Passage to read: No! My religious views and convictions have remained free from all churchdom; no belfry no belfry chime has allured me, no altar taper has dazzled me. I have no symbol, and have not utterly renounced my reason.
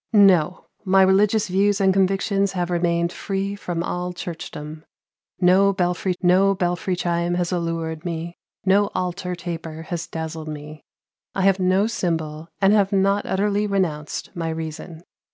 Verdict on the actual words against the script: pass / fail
pass